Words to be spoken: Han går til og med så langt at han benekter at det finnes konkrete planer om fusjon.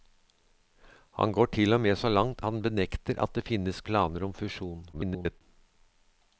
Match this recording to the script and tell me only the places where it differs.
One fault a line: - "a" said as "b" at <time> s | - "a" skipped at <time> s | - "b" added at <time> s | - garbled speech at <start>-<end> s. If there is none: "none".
- "at" skipped at 2.4 s
- "konkrete" skipped at 3.8 s
- garbled speech at 4.9-5.4 s